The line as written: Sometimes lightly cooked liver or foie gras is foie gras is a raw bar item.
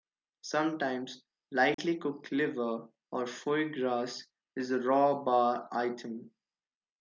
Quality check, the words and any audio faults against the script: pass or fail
fail